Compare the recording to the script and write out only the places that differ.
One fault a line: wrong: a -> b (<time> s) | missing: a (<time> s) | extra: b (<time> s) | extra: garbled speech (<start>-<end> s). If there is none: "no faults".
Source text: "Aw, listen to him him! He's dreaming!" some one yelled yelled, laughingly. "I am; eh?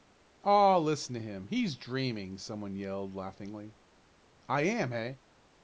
missing: him (1.4 s)
missing: yelled (3.1 s)